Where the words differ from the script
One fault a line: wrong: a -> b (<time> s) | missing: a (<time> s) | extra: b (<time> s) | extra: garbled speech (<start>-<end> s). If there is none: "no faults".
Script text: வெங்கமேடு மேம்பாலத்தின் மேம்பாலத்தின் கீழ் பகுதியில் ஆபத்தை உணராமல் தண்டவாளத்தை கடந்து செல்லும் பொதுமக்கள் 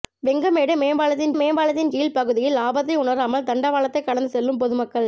no faults